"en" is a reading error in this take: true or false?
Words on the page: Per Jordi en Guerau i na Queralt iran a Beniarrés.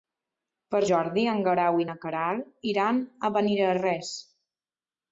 false